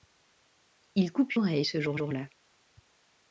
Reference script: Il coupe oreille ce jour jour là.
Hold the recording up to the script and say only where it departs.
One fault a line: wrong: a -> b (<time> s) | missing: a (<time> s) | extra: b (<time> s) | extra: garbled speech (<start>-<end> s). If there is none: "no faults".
no faults